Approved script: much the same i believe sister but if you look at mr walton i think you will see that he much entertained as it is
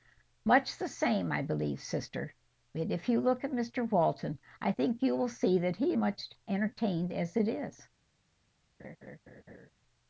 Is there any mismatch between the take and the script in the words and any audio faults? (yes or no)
yes